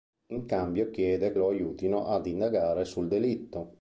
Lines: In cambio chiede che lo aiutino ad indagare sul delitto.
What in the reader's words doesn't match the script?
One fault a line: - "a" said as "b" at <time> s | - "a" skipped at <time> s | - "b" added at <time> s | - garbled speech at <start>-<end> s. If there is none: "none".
- "che" skipped at 1.3 s